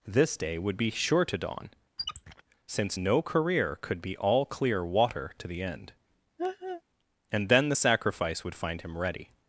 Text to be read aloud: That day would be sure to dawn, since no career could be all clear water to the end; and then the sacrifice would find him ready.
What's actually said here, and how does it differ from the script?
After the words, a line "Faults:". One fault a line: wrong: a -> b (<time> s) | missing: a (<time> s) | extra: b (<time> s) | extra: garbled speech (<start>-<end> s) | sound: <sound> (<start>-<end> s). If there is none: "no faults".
This day would be sure to dawn, since no career could be all clear water to the end; and then the sacrifice would find him ready.
Faults:
wrong: That -> This (0.1 s)
sound: squeak (2.0-2.4 s)
sound: laugh (6.4-6.8 s)